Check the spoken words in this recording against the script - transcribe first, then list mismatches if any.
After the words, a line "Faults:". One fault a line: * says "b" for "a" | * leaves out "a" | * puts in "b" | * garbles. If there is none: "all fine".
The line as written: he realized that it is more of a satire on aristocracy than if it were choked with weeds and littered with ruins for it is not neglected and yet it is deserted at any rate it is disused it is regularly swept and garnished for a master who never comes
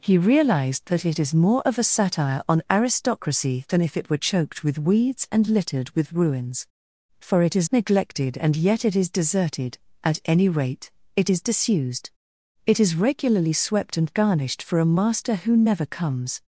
he realized that it is more of a satire on aristocracy than if it were choked with weeds and littered with ruins for it is neglected and yet it is deserted at any rate it is disused it is regularly swept and garnished for a master who never comes
Faults:
* leaves out "not"